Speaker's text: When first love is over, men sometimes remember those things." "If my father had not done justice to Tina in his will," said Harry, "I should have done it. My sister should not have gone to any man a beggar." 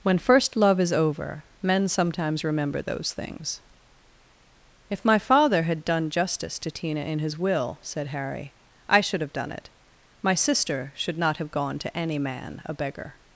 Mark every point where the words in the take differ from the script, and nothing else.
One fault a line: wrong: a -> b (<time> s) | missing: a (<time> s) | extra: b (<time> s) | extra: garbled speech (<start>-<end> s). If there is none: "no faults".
missing: not (5.8 s)